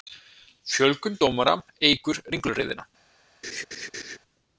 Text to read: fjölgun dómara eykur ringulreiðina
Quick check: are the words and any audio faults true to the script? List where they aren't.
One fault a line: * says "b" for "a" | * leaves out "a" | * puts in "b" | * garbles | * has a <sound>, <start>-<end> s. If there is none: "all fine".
* has a laugh, 3.4-4.2 s